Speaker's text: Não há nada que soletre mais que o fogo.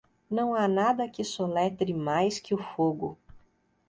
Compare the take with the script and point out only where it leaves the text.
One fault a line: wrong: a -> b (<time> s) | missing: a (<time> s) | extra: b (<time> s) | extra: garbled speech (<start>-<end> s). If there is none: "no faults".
no faults